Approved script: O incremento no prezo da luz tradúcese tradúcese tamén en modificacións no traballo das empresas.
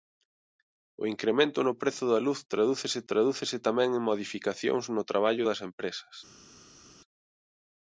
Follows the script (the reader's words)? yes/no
yes